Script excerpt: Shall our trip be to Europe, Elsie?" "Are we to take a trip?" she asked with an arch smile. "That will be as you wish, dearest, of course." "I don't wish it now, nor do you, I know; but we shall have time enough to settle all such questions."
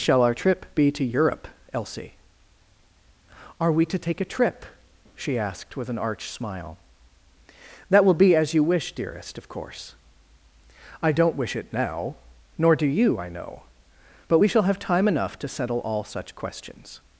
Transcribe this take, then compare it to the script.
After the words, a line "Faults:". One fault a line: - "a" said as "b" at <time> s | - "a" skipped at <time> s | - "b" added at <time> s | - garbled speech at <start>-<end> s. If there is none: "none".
Shall our trip be to Europe, Elsie?" "Are we to take a trip?" she asked with an arch smile. "That will be as you wish, dearest, of course." "I don't wish it now, nor do you, I know; but we shall have time enough to settle all such questions."
Faults:
none